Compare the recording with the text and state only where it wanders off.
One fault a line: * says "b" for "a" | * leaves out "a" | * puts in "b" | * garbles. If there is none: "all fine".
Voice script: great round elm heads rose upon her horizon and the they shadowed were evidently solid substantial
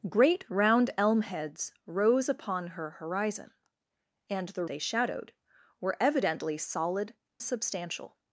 all fine